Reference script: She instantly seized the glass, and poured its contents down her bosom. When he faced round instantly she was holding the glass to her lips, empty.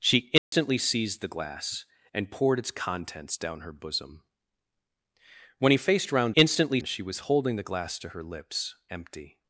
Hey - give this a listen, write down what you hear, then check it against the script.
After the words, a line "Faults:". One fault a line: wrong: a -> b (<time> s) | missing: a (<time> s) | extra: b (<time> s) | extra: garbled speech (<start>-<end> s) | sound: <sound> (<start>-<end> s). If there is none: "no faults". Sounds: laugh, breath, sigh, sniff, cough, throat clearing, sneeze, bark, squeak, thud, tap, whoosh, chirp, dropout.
She instantly seized the glass, and poured its contents down her bosom. When he faced round instantly she was holding the glass to her lips, empty.
Faults:
sound: dropout (0.4-0.5 s)